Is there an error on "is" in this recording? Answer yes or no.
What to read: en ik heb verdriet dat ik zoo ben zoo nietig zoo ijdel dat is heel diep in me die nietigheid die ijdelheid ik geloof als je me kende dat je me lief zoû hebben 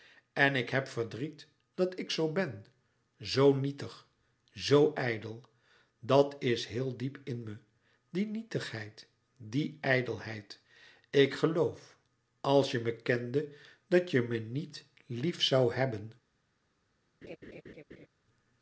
no